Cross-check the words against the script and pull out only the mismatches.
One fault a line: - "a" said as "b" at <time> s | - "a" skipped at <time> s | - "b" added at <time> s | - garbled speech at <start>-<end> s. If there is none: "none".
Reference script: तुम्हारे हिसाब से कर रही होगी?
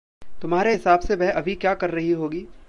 - "वह अभी क्या" added at 1.2 s